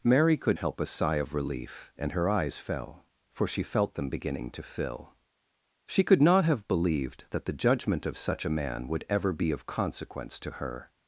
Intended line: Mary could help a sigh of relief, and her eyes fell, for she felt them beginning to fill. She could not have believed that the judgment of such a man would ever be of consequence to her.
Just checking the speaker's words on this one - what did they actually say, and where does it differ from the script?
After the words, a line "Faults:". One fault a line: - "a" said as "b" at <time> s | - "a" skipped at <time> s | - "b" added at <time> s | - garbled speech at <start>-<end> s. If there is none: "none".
Mary could help a sigh of relief, and her eyes fell, for she felt them beginning to fill. She could not have believed that the judgment of such a man would ever be of consequence to her.
Faults:
none